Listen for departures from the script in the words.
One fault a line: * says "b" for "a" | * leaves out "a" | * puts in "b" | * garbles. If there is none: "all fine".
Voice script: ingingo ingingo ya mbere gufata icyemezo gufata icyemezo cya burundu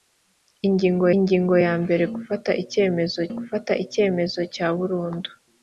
all fine